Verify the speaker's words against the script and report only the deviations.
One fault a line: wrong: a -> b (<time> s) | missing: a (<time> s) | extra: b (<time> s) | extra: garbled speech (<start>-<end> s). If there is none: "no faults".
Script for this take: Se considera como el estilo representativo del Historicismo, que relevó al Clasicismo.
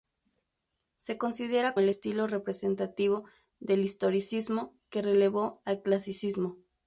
missing: como (1.8 s)